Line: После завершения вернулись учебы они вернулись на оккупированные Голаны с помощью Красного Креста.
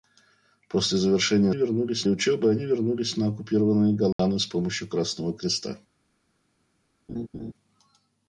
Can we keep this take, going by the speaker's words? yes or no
yes